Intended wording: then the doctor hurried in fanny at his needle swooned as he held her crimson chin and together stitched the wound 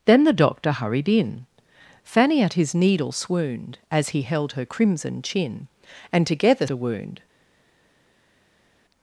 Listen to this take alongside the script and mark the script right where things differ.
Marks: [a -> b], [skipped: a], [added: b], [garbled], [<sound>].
then the doctor hurried in fanny at his needle swooned as he held her crimson chin and together [skipped: stitched] the wound